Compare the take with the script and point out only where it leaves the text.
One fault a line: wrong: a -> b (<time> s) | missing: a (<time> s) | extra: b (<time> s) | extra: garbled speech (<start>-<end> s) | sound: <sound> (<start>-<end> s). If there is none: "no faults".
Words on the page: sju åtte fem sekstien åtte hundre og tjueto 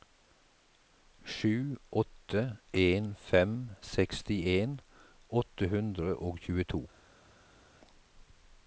extra: en (2.7 s)